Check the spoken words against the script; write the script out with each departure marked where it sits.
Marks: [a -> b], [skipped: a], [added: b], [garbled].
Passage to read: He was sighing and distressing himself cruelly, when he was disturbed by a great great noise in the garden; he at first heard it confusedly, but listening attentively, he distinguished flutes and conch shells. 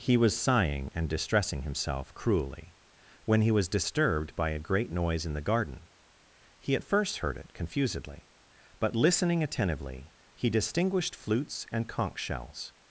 He was sighing and distressing himself cruelly, when he was disturbed by a great [skipped: great] noise in the garden; he at first heard it confusedly, but listening attentively, he distinguished flutes and conch shells.